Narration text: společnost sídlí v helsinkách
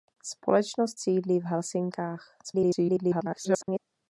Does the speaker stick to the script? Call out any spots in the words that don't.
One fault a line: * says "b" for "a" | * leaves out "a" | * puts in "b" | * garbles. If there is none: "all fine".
* garbles